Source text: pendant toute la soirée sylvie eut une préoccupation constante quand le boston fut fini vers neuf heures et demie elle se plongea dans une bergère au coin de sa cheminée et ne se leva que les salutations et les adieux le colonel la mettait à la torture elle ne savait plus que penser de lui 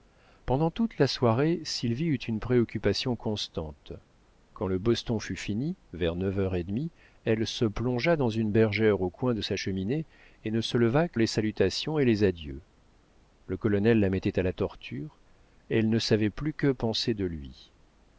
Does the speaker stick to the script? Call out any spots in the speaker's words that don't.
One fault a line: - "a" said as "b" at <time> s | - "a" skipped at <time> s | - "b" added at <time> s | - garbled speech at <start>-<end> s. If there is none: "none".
none